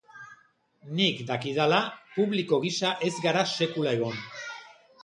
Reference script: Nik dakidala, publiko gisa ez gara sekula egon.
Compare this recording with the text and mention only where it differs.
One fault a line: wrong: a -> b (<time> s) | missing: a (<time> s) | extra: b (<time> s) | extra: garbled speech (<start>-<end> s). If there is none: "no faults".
no faults